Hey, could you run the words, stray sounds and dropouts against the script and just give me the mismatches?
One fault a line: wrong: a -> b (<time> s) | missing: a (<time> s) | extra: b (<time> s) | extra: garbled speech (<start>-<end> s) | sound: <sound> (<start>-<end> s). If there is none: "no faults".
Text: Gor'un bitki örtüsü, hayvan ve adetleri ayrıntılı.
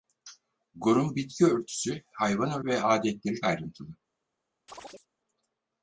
sound: chirp (4.7-5.1 s)